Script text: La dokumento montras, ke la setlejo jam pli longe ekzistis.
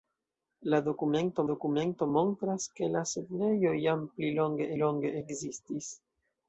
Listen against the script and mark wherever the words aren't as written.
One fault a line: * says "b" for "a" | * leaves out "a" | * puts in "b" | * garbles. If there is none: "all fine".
* puts in "dokumento"
* puts in "longe"